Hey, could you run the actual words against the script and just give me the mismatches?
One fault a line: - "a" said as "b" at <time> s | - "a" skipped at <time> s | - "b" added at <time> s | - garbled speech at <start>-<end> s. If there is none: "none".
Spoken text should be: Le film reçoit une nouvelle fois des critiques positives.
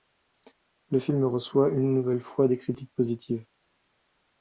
none